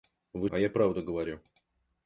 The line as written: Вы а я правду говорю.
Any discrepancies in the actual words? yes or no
no